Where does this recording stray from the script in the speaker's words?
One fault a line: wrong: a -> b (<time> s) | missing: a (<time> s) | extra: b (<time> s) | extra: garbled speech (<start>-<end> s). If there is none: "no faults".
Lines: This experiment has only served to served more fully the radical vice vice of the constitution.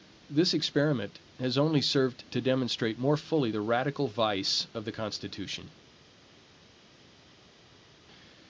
wrong: served -> demonstrate (2.4 s)
missing: vice (4.7 s)